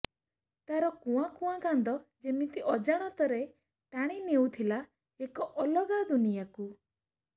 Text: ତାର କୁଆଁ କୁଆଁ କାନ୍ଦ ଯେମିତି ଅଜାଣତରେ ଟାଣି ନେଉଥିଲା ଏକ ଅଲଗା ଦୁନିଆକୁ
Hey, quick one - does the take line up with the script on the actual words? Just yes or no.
yes